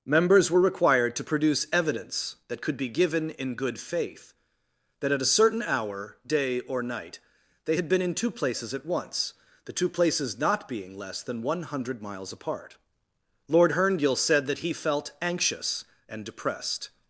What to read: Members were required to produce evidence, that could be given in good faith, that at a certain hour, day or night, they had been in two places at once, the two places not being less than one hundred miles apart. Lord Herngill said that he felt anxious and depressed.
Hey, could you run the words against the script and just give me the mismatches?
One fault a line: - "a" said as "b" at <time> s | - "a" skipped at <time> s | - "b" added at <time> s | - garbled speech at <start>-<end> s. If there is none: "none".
none